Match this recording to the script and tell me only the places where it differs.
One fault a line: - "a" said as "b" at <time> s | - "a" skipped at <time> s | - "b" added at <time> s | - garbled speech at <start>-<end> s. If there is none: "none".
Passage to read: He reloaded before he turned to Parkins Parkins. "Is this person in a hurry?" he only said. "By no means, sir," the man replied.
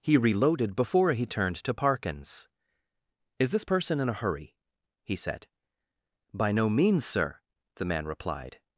- "Parkins" skipped at 2.5 s
- "only" skipped at 5.2 s